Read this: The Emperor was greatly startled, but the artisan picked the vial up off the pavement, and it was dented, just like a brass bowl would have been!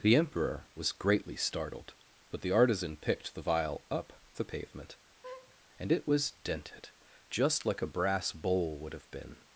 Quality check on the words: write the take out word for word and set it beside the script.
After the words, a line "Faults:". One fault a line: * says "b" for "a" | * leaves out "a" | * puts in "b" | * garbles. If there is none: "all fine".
The Emperor was greatly startled, but the artisan picked the vial up the pavement, and it was dented, just like a brass bowl would have been!
Faults:
* leaves out "off"